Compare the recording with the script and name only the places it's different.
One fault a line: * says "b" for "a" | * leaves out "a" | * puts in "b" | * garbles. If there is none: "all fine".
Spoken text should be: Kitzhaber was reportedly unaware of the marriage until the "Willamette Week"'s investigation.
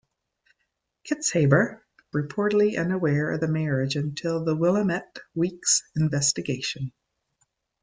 * leaves out "was"